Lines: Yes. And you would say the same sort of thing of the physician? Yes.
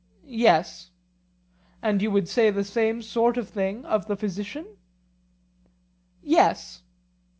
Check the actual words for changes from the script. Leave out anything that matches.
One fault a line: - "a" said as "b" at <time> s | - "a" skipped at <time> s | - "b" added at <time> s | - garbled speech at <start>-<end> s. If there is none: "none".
none